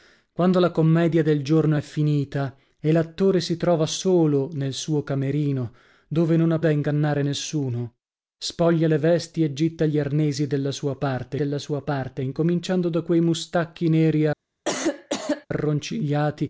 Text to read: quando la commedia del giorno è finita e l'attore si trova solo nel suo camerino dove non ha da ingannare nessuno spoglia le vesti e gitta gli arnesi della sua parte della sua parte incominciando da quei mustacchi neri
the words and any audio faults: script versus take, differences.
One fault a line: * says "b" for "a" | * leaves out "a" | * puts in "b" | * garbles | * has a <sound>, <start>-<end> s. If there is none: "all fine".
* has a cough, 14.6-15.5 s